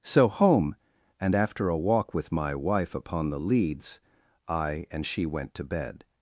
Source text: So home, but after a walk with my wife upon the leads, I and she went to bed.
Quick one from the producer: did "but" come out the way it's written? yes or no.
no